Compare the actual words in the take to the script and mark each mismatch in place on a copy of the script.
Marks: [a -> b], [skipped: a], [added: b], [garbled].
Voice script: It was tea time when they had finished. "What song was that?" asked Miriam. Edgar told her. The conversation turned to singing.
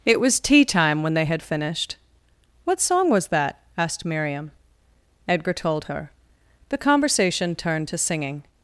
It was tea time when they had finished. "What song was that?" asked Miriam. Edgar told her. The conversation turned to singing.